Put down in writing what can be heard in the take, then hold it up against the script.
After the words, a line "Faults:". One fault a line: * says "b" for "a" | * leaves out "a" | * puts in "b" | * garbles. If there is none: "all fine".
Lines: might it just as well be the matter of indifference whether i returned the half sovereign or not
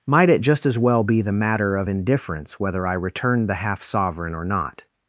might it just as well be the matter of indifference whether i returned the half sovereign or not
Faults:
all fine